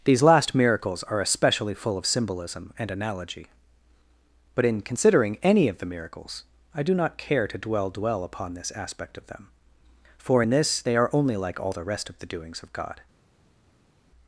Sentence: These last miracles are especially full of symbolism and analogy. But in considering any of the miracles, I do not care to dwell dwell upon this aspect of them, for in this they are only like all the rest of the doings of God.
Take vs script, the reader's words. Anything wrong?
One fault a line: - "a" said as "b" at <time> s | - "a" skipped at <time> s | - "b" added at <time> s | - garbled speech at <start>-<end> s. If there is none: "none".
none